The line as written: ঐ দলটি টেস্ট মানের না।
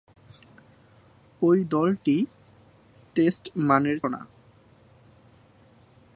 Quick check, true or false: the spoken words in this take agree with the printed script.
true